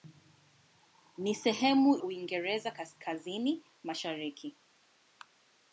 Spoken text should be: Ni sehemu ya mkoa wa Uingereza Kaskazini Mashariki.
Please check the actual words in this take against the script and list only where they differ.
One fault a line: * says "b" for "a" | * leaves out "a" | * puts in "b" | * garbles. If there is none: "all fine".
* leaves out "ya mkoa wa"